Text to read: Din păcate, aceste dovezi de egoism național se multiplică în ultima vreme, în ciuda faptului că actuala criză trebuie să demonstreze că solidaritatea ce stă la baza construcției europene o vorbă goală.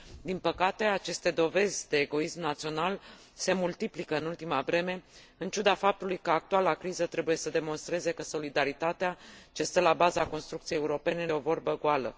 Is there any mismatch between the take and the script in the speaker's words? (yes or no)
no